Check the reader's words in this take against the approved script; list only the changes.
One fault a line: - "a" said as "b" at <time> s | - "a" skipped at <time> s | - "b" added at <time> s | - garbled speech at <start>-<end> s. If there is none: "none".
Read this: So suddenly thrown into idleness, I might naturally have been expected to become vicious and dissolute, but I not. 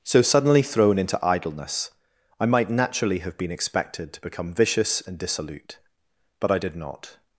- "did" added at 6.6 s